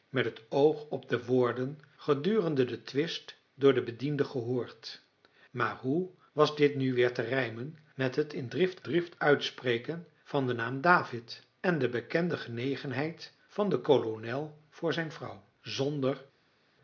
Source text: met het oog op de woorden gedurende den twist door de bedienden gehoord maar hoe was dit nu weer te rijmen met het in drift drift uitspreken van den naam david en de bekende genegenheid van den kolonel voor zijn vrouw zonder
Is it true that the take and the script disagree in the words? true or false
false